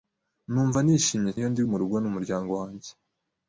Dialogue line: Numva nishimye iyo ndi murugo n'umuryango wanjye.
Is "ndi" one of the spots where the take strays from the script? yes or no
no